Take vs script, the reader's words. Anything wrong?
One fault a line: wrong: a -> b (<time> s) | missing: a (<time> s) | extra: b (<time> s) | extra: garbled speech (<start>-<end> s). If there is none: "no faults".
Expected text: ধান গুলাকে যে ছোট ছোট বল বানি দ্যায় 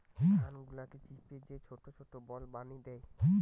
extra: চিপে (1.0 s)